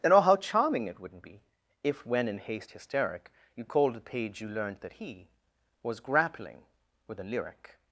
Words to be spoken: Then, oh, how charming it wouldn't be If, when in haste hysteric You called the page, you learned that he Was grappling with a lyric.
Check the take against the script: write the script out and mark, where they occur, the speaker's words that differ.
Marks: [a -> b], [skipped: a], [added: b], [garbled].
Then, oh, how charming it wouldn't be If, when in haste hysteric You called the page, you learned that he Was grappling with a lyric.